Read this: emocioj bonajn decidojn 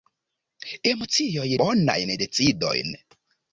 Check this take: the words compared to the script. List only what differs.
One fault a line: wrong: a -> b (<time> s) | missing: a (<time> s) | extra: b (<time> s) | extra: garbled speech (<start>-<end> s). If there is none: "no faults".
no faults